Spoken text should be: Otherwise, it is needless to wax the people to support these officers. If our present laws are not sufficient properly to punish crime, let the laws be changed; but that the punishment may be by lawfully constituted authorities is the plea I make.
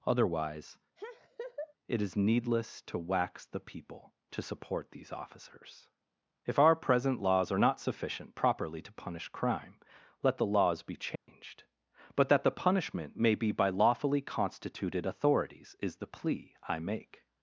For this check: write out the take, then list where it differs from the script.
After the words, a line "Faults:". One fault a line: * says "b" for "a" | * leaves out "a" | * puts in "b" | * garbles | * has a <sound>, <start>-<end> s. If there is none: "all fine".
Otherwise, it is needless to wax the people to support these officers. If our present laws are not sufficient properly to punish crime, let the laws be changed; but that the punishment may be by lawfully constituted authorities is the plea I make.
Faults:
* has a laugh, 1.0-1.7 s
* has a dropout, 11.2-11.3 s